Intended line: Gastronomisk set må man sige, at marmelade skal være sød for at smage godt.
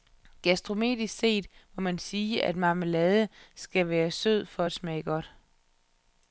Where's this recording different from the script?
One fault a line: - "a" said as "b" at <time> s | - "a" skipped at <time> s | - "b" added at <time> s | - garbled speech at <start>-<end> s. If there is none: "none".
none